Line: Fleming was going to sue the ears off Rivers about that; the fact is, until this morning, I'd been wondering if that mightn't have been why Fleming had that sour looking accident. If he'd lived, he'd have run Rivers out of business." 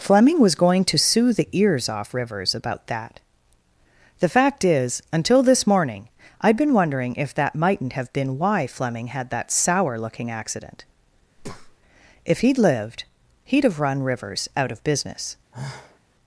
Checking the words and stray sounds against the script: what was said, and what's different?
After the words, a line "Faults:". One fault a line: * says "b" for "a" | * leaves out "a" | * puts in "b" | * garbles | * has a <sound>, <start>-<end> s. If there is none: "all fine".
Fleming was going to sue the ears off Rivers about that; the fact is, until this morning, I'd been wondering if that mightn't have been why Fleming had that sour looking accident. If he'd lived, he'd have run Rivers out of business."
Faults:
* has a breath, 11.4-11.8 s
* has a sigh, 15.5-16.0 s